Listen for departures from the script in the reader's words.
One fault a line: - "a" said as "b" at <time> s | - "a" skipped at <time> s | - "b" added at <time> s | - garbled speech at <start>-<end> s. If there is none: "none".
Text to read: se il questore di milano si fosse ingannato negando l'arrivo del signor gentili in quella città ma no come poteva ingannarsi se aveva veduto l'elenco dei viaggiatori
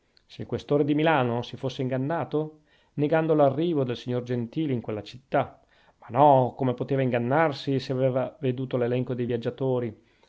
none